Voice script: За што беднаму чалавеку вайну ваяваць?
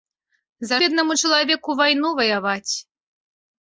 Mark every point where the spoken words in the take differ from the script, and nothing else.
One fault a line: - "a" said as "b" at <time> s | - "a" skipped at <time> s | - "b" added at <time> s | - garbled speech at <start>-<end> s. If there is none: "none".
- "што" skipped at 0.8 s